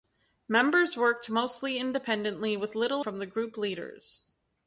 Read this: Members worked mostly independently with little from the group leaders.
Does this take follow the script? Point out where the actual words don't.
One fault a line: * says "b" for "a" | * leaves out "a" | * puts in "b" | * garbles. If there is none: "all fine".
all fine